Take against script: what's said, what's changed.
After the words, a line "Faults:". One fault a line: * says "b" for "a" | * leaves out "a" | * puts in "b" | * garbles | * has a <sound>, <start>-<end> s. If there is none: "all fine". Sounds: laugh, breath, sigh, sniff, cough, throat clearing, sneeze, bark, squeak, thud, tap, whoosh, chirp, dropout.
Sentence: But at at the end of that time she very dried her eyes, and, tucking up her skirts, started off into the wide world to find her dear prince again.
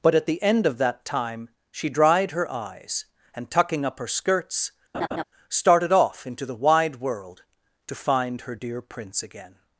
But at the end of that time she dried her eyes, and, tucking up her skirts, started off into the wide world to find her dear prince again.
Faults:
* leaves out "at"
* leaves out "very"
* has a laugh, 4.9-5.2 s